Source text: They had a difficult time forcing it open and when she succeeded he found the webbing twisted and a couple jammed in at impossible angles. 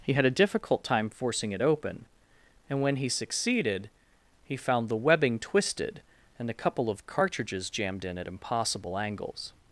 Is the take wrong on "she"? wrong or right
wrong